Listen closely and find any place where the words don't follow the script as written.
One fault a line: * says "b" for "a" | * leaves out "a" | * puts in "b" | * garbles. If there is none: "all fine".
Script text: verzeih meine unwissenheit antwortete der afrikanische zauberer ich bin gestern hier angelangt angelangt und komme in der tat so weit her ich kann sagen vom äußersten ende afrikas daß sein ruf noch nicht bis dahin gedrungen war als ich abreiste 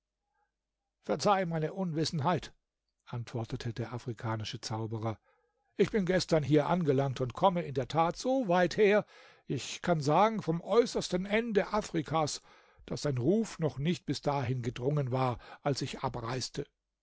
* leaves out "angelangt"